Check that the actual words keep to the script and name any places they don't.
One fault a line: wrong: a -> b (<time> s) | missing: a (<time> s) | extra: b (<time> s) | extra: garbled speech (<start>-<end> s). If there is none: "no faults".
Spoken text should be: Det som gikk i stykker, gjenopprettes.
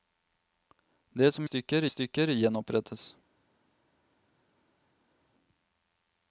wrong: gikk -> stykker (1.4 s)